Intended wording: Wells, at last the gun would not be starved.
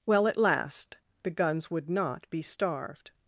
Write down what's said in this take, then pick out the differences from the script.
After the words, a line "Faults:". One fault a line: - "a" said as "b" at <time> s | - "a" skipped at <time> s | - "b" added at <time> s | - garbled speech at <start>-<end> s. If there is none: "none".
Well, at last the guns would not be starved.
Faults:
- "Wells" said as "Well" at 0.1 s
- "gun" said as "guns" at 1.3 s